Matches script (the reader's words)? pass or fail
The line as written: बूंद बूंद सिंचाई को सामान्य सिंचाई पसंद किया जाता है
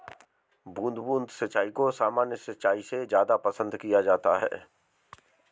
fail